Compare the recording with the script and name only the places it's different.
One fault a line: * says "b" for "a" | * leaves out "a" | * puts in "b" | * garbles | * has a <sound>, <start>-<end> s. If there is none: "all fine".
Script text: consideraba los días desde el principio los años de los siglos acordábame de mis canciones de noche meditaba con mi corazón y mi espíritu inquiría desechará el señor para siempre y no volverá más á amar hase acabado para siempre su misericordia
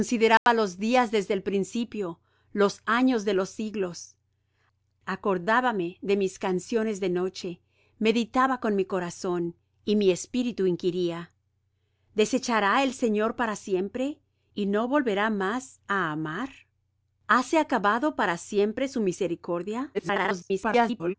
* has a dropout, 0.4-0.5 s
* garbles